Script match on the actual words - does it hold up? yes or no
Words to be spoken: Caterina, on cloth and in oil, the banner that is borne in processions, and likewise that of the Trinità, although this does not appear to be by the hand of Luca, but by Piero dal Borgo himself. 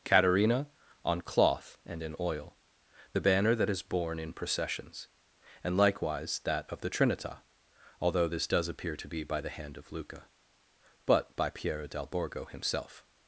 no